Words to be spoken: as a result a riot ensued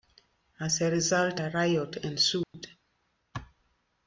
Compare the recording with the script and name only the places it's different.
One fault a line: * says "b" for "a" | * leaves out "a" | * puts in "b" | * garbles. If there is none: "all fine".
all fine